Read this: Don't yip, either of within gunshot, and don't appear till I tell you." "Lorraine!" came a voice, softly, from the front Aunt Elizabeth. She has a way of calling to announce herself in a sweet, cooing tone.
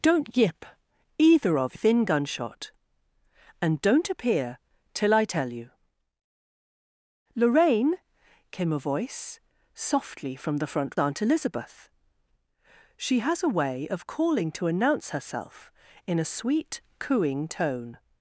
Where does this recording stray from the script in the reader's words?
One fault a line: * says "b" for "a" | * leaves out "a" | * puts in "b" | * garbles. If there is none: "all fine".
all fine